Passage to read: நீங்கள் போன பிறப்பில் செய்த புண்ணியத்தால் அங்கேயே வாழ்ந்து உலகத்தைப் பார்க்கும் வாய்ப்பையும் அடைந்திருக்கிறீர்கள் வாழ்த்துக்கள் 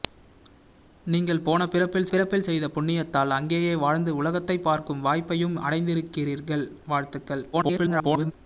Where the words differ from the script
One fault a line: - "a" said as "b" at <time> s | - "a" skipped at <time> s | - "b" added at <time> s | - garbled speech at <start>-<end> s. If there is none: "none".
- "பிறப்பில்" added at 2.1 s
- garbled speech at 7.5-8.3 s